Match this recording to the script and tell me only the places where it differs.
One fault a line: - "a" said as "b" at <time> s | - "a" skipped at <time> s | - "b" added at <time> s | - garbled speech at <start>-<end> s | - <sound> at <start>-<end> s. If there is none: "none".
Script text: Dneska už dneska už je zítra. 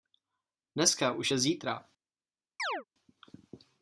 - "dneska už" skipped at 1.3 s
- chirp at 2.6-2.8 s